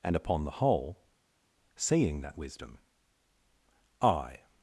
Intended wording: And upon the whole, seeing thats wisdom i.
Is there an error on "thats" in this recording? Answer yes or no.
yes